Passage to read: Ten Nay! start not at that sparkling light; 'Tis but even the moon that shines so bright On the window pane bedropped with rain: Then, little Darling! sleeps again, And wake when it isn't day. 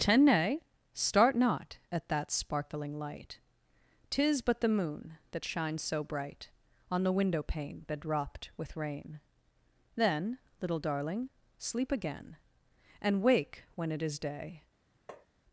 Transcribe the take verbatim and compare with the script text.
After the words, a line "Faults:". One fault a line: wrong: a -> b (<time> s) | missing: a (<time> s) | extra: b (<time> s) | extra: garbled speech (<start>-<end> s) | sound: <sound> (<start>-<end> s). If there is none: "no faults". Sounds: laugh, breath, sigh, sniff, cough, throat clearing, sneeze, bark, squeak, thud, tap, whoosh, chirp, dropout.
Ten Nay! start not at that sparkling light; 'Tis but the moon that shines so bright On the window pane bedropped with rain: Then, little Darling! sleep again, And wake when it is day.
Faults:
missing: even (4.6 s)
wrong: sleeps -> sleep (11.6 s)
wrong: isn't -> is (14.0 s)
sound: tap (15.1-15.3 s)